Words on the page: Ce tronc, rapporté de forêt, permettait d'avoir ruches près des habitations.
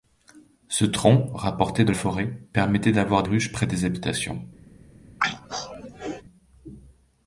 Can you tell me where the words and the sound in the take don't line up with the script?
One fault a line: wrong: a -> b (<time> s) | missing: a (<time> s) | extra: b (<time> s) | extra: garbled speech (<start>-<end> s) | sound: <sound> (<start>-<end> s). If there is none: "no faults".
sound: throat clearing (5.2-6.2 s)